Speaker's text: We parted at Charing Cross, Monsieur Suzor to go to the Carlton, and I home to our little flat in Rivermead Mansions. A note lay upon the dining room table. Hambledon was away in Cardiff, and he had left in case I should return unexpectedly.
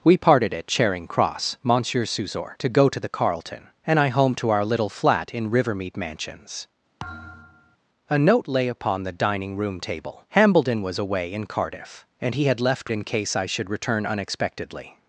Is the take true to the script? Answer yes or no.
yes